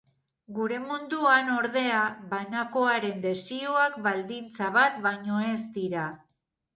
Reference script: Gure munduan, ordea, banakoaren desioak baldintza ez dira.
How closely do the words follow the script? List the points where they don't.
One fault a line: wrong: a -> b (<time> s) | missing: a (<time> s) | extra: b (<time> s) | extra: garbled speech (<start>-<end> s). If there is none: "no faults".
extra: bat baino (4.8 s)